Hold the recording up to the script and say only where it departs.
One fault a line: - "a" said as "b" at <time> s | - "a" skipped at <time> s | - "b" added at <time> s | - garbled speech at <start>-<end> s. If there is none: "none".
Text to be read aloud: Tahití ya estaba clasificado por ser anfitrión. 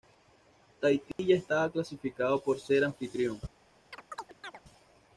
none